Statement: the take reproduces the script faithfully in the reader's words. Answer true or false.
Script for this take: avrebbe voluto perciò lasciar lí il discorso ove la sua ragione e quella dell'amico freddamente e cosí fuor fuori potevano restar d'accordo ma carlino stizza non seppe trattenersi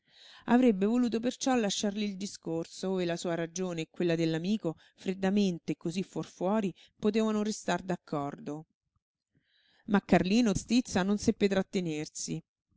true